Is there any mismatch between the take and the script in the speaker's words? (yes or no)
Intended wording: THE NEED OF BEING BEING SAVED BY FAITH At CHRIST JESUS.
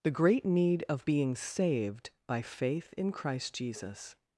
yes